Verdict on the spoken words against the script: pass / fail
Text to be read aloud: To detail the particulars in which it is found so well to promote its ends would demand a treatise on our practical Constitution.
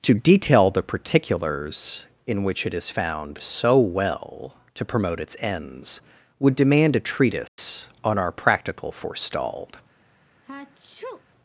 fail